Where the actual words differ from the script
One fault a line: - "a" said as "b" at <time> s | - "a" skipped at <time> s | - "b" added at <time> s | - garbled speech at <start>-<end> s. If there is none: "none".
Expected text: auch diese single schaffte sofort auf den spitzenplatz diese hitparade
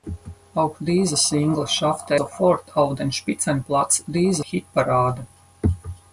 none